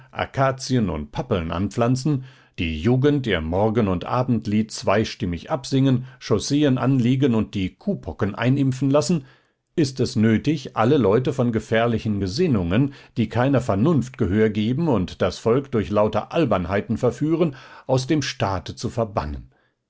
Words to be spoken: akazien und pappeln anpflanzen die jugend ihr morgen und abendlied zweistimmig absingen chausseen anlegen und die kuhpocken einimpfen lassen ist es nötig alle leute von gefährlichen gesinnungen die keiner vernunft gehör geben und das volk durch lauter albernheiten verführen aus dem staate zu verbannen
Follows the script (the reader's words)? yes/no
yes